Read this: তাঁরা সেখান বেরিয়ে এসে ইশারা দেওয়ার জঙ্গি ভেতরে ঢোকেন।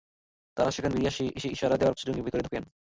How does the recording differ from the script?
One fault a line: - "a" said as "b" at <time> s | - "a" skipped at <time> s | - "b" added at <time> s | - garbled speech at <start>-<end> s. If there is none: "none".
none